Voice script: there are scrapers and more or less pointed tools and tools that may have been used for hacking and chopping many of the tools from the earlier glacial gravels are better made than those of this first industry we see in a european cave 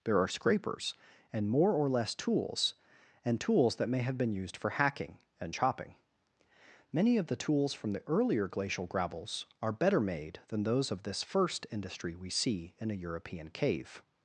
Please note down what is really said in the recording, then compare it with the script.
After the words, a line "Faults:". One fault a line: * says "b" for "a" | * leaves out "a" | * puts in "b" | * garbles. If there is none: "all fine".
there are scrapers and more or less tools and tools that may have been used for hacking and chopping many of the tools from the earlier glacial gravels are better made than those of this first industry we see in a european cave
Faults:
* leaves out "pointed"